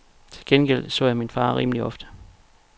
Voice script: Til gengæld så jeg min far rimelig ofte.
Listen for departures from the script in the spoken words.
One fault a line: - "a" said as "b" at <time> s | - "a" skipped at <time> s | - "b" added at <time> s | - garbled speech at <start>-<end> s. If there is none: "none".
none